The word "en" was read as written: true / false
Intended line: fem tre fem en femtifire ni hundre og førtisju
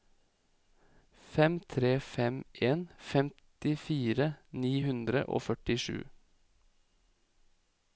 true